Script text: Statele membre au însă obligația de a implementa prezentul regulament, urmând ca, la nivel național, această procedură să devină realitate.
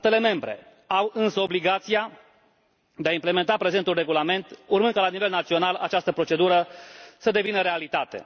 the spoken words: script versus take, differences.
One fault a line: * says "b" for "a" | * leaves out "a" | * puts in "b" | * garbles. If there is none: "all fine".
all fine